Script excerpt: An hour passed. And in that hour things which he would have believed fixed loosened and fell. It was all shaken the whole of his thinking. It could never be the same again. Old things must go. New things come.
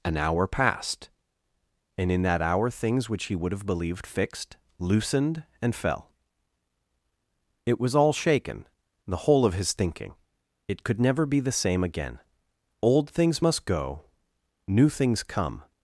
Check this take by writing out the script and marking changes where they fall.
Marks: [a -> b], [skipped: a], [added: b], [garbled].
An hour passed. And in that hour things which he would have believed fixed loosened and fell. It was all shaken the whole of his thinking. It could never be the same again. Old things must go. New things come.